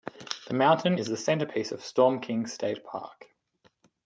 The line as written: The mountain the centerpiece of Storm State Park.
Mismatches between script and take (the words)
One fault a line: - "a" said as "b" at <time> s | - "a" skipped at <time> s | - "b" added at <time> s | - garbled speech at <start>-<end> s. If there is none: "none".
- "is" added at 0.9 s
- "King" added at 2.2 s